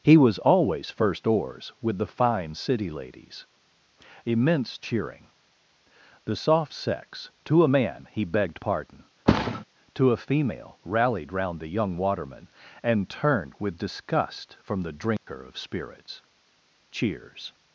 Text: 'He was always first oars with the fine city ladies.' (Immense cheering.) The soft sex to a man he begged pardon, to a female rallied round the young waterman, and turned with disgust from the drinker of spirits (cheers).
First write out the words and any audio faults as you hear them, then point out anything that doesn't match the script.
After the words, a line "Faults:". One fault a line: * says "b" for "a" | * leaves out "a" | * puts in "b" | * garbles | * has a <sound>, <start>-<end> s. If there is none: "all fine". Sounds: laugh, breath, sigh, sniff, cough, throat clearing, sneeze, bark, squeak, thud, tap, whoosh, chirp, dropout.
'He was always first oars with the fine city ladies.' (Immense cheering.) The soft sex to a man he begged pardon, to a female rallied round the young waterman, and turned with disgust from the drinker of spirits (cheers).
Faults:
* has a thud, 9.3-9.6 s
* has a dropout, 15.2-15.3 s